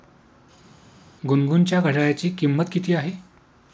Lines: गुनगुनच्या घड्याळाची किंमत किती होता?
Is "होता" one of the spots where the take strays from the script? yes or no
yes